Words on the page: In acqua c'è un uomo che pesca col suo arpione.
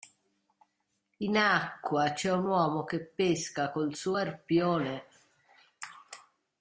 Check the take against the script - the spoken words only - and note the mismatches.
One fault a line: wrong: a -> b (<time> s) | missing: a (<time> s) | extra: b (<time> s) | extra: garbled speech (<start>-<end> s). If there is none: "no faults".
no faults